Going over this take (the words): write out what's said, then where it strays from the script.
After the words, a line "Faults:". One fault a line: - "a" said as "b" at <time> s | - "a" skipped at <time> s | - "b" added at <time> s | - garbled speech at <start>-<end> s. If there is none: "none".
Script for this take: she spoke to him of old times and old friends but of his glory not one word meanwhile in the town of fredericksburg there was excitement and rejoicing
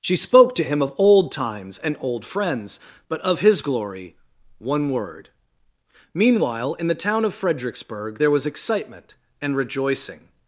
she spoke to him of old times and old friends but of his glory one word meanwhile in the town of fredericksburg there was excitement and rejoicing
Faults:
- "not" skipped at 4.2 s